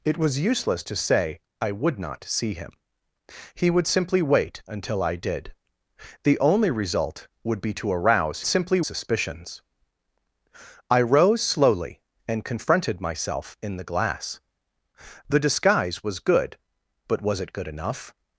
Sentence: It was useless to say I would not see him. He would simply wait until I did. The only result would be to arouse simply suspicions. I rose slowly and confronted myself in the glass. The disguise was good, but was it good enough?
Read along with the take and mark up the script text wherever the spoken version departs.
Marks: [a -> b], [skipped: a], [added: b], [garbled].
It was useless to say I would not see him. He would simply wait until I did. The only result would be to arouse simply suspicions. I rose slowly and confronted myself in the glass. The disguise was good, but was it good enough?